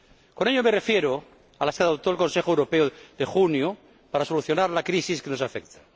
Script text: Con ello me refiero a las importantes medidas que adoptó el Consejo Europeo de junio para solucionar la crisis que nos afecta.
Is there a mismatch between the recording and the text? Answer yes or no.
yes